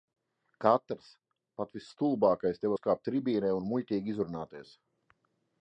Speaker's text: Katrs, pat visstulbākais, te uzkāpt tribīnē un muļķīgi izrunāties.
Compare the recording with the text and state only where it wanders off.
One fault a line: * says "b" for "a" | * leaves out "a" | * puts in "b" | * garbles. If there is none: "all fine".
all fine